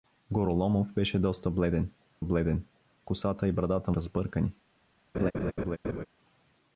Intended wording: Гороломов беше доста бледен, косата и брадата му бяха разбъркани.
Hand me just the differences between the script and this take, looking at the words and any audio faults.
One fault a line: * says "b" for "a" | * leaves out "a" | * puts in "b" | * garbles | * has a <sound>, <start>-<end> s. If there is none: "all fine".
* puts in "бледен"
* leaves out "му бяха"
* has a laugh, 5.1-6.1 s